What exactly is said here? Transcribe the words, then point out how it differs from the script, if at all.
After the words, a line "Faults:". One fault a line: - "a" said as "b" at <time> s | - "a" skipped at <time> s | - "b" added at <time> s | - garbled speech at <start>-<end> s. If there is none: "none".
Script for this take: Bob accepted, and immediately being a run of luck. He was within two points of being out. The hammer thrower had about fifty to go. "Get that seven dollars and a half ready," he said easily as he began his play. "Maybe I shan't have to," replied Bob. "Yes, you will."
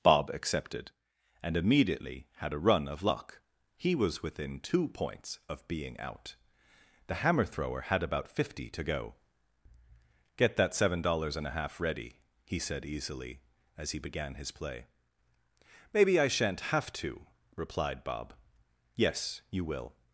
Bob accepted, and immediately had a run of luck. He was within two points of being out. The hammer thrower had about fifty to go. "Get that seven dollars and a half ready," he said easily as he began his play. "Maybe I shan't have to," replied Bob. "Yes, you will."
Faults:
- "being" said as "had" at 2.4 s